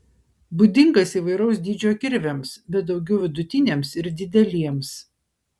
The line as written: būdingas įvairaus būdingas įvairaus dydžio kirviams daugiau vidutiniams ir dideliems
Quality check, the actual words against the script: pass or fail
fail